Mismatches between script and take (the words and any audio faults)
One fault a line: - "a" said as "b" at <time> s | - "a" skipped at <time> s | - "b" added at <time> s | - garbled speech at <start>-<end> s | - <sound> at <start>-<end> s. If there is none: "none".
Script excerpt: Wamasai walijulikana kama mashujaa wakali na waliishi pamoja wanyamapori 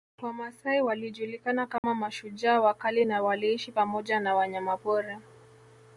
- dropout at 1.8-1.8 s
- "na" added at 4.2 s